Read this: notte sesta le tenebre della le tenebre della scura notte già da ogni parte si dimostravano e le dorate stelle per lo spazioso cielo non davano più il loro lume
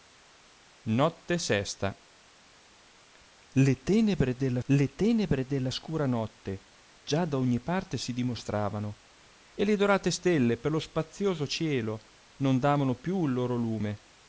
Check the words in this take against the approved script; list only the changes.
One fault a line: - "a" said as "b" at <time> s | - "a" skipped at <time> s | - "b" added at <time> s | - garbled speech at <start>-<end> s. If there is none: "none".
none